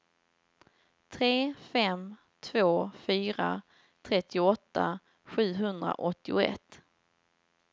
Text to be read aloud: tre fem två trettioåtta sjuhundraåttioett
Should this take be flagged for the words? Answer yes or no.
yes